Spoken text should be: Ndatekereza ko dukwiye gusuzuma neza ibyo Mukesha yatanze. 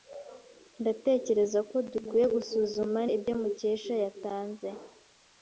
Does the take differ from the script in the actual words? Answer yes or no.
yes